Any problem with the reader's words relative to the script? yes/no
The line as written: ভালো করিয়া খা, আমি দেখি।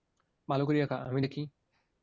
no